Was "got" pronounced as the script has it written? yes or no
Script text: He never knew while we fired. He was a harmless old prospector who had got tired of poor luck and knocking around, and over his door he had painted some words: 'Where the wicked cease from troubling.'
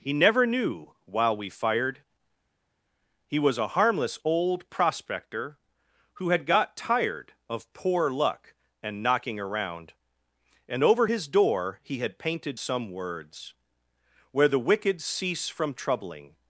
yes